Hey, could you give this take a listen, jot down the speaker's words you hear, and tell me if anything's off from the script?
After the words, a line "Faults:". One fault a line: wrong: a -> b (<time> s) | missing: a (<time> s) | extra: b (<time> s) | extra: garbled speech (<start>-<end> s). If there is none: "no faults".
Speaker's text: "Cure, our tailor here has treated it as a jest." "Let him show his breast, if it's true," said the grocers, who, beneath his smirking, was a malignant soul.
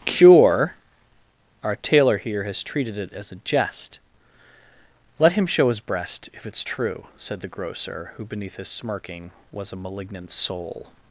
"Cure, our tailor here has treated it as a jest." "Let him show his breast, if it's true," said the grocer, who, beneath his smirking, was a malignant soul.
Faults:
wrong: grocers -> grocer (7.5 s)